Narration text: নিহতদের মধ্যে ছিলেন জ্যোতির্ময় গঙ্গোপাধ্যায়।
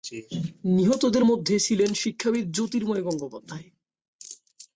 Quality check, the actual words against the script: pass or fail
fail